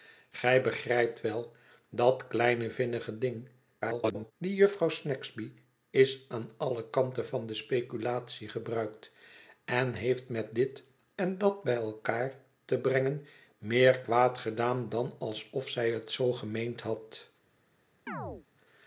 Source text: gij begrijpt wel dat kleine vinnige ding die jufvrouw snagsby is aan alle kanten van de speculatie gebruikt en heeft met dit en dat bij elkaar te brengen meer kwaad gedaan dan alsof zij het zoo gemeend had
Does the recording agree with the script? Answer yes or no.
no